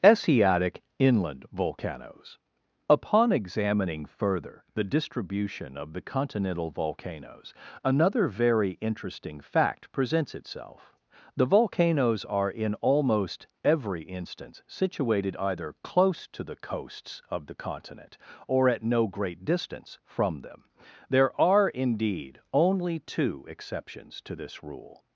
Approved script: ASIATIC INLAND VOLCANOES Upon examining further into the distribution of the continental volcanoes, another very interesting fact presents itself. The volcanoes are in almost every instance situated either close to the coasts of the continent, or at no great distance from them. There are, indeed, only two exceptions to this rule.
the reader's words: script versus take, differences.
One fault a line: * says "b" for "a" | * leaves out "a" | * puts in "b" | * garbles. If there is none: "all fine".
* leaves out "into"